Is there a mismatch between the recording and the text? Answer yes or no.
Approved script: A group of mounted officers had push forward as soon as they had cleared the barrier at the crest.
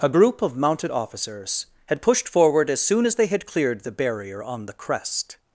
yes